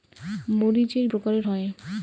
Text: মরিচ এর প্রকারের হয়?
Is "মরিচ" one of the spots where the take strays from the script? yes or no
no